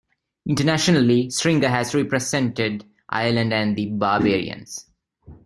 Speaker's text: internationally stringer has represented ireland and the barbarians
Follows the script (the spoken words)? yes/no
yes